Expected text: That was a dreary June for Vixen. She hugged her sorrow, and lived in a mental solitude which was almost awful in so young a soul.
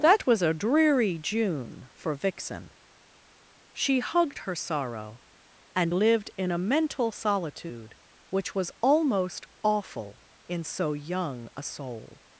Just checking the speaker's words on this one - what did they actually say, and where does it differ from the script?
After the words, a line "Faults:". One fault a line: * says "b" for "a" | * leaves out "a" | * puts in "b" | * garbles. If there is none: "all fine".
That was a dreary June for Vixen. She hugged her sorrow, and lived in a mental solitude which was almost awful in so young a soul.
Faults:
all fine